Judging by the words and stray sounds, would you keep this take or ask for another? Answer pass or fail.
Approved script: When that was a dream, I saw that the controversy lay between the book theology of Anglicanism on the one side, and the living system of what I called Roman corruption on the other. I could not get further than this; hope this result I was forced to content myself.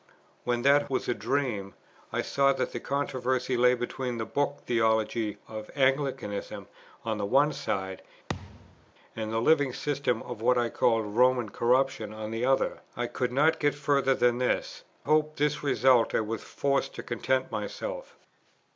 fail